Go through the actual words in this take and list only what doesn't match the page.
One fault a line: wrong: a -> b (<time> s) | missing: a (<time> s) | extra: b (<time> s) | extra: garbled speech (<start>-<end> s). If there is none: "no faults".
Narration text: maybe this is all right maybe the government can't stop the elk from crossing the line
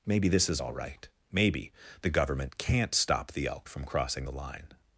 no faults